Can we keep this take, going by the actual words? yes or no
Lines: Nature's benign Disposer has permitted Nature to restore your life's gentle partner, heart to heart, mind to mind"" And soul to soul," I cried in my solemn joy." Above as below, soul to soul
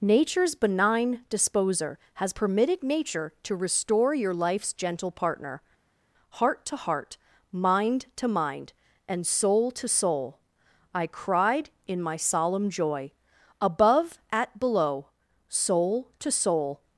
no